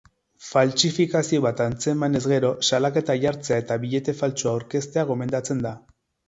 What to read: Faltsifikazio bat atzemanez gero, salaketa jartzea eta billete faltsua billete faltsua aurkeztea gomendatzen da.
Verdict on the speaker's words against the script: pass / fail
fail